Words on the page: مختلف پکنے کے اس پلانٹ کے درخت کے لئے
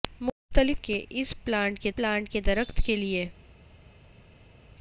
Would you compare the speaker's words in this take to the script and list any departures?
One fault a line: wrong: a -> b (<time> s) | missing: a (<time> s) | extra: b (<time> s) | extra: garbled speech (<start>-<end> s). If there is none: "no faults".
missing: پکنے (0.8 s)
extra: پلانٹ کے (1.9 s)